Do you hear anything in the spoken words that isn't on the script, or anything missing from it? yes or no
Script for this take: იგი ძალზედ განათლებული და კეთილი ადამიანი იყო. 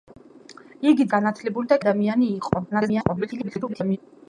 yes